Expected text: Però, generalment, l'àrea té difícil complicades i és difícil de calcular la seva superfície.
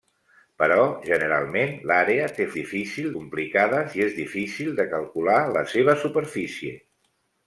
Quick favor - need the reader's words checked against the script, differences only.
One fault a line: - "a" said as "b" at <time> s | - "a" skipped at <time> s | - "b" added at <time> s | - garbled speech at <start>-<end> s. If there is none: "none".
none